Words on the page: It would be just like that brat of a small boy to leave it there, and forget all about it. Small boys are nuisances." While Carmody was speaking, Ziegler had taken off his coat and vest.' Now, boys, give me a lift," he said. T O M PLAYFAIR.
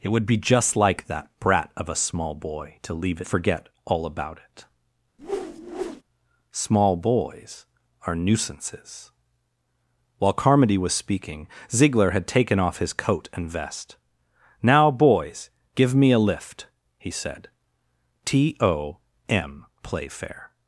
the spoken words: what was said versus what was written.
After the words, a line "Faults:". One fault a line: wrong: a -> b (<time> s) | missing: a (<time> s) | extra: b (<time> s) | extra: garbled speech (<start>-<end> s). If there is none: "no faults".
It would be just like that brat of a small boy to leave forget all about it. Small boys are nuisances." While Carmody was speaking, Ziegler had taken off his coat and vest.' Now, boys, give me a lift," he said. T O M PLAYFAIR.
Faults:
missing: it there and (3.2 s)